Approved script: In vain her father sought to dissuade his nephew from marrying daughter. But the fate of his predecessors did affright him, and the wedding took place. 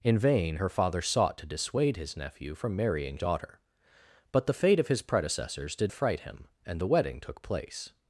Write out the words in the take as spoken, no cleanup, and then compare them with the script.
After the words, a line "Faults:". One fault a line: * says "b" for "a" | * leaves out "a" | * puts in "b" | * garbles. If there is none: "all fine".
In vain her father sought to dissuade his nephew from marrying daughter. But the fate of his predecessors did affright him, and the wedding took place.
Faults:
all fine